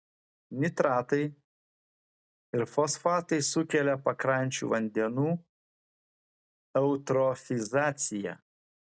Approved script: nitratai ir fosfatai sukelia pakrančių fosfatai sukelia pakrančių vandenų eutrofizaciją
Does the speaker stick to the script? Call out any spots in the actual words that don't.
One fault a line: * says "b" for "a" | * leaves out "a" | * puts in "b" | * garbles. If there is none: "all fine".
* leaves out "fosfatai sukelia pakrančių"